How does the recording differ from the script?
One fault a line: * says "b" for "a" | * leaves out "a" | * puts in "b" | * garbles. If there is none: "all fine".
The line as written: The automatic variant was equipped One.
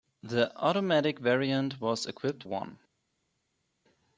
all fine